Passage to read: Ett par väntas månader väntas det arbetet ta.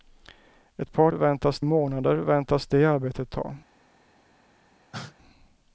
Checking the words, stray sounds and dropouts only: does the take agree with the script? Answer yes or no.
no